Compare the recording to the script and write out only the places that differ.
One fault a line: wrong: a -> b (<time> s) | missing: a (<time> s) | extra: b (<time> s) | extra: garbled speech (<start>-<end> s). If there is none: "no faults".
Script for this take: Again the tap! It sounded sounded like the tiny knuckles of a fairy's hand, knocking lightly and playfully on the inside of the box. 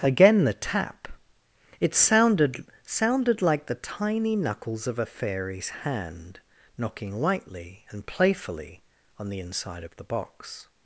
no faults